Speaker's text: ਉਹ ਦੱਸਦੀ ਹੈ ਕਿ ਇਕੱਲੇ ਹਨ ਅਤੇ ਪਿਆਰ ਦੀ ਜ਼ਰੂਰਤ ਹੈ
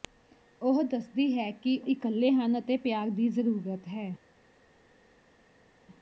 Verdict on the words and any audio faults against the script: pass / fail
pass